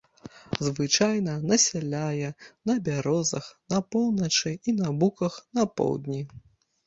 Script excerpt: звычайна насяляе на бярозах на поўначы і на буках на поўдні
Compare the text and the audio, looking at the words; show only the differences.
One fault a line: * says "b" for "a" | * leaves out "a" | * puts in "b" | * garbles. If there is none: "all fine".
all fine